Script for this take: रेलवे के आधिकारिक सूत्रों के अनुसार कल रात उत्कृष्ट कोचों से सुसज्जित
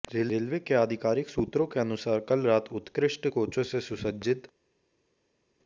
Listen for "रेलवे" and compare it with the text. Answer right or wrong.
right